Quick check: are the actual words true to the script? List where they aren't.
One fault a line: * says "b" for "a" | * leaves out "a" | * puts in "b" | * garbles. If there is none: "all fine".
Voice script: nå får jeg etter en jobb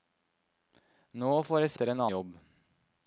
all fine